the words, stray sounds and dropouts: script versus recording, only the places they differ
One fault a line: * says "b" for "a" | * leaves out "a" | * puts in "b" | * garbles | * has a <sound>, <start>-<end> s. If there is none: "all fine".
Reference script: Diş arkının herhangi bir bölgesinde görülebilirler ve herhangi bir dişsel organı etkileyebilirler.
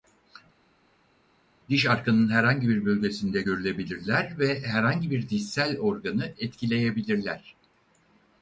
all fine